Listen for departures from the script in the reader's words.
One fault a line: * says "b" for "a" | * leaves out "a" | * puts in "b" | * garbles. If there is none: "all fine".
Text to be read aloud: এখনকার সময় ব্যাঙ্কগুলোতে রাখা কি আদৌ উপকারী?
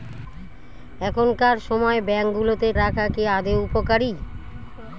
all fine